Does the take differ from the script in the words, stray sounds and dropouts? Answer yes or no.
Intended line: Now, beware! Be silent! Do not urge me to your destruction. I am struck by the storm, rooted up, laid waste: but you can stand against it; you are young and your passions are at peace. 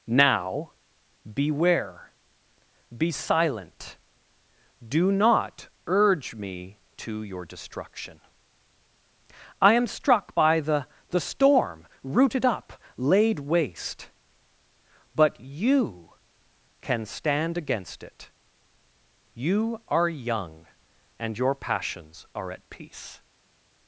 yes